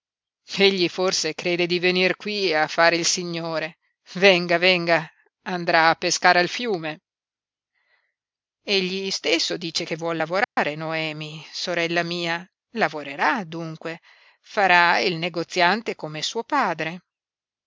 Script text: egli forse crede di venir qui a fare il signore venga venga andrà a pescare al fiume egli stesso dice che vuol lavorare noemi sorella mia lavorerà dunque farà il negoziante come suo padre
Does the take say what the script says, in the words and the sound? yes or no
no